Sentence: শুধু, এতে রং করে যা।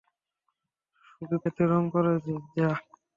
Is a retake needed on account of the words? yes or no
no